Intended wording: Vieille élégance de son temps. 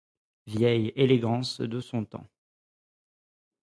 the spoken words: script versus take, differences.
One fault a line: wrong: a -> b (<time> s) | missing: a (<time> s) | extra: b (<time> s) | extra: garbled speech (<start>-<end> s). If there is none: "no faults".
no faults